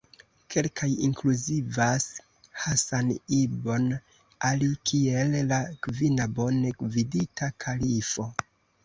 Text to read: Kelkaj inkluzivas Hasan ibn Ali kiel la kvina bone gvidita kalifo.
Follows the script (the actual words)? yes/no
yes